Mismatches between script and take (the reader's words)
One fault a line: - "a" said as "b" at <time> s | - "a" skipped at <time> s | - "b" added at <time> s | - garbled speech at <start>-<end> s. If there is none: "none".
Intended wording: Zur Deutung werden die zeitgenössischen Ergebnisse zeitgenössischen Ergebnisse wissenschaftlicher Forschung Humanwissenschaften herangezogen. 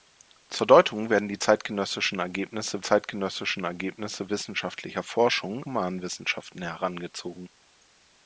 none